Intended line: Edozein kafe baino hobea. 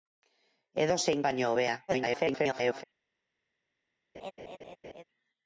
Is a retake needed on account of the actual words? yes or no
yes